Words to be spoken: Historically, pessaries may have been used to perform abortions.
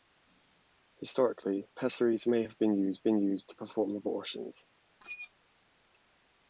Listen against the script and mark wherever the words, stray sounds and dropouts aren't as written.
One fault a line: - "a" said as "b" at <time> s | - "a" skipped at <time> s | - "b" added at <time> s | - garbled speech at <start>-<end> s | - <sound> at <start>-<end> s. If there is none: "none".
- "been used" added at 3.0 s
- squeak at 5.0-5.3 s